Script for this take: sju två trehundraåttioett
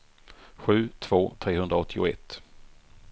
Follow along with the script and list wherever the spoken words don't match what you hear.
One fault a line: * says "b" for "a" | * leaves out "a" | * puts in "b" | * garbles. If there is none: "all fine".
all fine